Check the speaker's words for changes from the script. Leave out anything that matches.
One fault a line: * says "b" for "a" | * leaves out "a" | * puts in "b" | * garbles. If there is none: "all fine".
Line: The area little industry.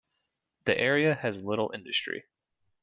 * puts in "has"